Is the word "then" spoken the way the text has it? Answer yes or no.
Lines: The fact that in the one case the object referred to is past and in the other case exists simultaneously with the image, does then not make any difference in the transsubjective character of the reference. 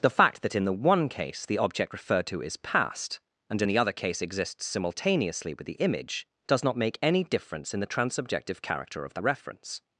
no